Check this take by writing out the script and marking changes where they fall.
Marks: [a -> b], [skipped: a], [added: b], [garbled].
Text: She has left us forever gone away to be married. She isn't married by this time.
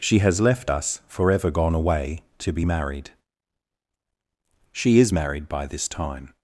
She has left us forever gone away to be married. She [isn't -> is] married by this time.